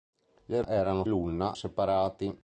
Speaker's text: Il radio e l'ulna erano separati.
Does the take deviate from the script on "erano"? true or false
true